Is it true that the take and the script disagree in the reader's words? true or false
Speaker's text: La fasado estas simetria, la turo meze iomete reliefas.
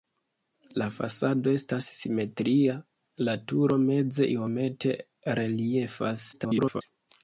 true